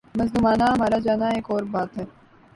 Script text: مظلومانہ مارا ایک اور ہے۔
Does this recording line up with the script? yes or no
no